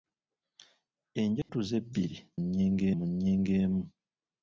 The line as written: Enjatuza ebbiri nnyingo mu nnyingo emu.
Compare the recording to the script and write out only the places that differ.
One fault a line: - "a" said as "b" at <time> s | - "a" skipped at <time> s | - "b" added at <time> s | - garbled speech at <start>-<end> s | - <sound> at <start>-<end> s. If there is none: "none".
- dropout at 1.4-1.5 s